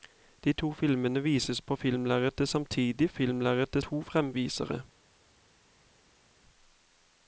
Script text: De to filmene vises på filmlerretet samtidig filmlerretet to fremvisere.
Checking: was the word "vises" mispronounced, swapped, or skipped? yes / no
no